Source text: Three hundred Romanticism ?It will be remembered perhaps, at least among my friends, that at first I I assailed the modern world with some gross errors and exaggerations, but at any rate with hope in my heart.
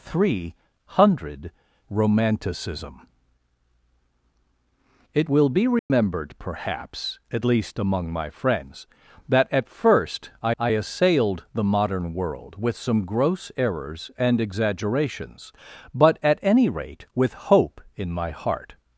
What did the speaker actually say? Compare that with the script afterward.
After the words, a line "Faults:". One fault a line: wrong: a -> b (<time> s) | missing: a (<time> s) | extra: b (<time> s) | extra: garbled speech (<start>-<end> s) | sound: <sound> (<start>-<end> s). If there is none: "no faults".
Three hundred Romanticism ?It will be remembered perhaps, at least among my friends, that at first I I assailed the modern world with some gross errors and exaggerations, but at any rate with hope in my heart.
Faults:
sound: dropout (5.8-5.9 s)